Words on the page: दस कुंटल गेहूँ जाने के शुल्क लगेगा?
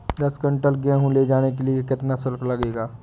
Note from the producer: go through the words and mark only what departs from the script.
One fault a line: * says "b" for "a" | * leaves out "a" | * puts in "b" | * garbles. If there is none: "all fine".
* puts in "ले"
* puts in "लिए कितना"